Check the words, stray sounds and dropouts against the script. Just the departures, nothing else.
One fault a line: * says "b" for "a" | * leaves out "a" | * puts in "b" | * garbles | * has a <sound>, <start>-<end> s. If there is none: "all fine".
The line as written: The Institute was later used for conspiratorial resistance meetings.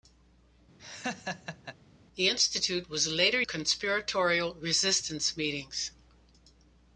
* has a laugh, 0.8-1.8 s
* leaves out "used for"